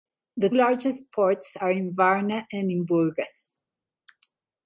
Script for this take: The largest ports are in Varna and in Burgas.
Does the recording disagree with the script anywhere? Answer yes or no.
no